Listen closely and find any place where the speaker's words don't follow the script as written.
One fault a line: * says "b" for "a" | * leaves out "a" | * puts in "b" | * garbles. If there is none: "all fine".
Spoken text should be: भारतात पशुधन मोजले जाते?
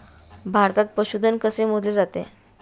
* puts in "कसे"